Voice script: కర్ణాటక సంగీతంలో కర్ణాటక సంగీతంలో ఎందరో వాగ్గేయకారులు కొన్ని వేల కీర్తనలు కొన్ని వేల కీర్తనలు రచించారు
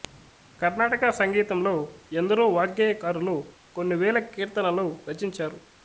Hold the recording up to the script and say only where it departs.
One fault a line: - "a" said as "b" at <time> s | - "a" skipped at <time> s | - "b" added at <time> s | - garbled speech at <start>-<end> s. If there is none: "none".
- "కర్ణాటక సంగీతంలో" skipped at 1.7 s
- "కొన్ని వేల కీర్తనలు" skipped at 4.9 s